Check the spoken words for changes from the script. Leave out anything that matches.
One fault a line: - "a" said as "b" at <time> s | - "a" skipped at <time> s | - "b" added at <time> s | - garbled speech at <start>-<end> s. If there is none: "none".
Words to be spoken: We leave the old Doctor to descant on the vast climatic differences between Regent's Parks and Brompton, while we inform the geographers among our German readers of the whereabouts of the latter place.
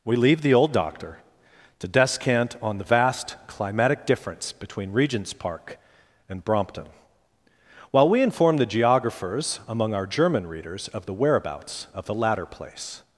- "differences" said as "difference" at 4.0 s
- "Parks" said as "Park" at 5.3 s